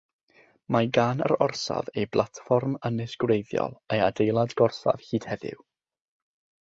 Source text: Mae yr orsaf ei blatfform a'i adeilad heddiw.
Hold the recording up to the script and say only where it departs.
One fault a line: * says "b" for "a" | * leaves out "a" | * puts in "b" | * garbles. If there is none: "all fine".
* puts in "gan"
* puts in "ynys gwreiddiol"
* puts in "gorsaf hyd"